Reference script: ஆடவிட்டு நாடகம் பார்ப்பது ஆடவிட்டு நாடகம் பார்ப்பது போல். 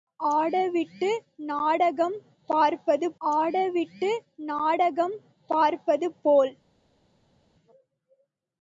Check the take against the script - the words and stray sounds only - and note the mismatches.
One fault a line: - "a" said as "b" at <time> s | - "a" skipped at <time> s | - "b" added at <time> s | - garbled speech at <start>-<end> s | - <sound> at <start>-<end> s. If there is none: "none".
none